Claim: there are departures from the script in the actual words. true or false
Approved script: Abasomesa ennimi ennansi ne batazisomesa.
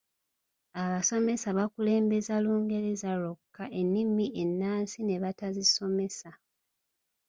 true